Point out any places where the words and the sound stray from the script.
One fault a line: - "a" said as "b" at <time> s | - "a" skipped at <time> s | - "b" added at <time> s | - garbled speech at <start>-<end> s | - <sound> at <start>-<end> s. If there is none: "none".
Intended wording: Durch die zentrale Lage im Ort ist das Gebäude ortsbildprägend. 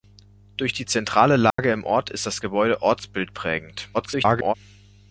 - dropout at 1.5-1.6 s
- garbled speech at 3.9-4.5 s